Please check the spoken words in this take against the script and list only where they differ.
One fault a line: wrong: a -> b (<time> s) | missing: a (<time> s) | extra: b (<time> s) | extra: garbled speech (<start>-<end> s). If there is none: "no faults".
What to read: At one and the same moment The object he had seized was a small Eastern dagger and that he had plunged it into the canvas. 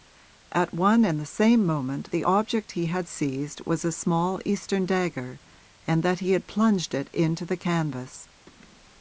no faults